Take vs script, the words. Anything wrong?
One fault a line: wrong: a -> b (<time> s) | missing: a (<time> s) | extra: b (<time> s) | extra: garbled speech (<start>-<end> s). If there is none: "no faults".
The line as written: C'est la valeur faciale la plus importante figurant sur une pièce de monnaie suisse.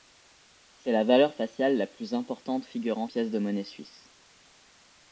missing: sur une (3.1 s)